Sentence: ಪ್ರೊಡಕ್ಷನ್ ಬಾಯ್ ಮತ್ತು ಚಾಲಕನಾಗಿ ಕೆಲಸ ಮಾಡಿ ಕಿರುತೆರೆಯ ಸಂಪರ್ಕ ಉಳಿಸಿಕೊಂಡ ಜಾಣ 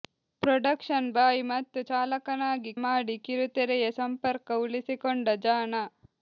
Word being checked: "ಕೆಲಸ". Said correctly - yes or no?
no